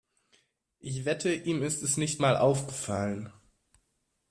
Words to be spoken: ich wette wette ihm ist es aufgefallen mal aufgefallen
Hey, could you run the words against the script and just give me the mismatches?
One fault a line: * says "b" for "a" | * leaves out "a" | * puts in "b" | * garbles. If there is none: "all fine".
* leaves out "wette"
* says "nicht" for "aufgefallen"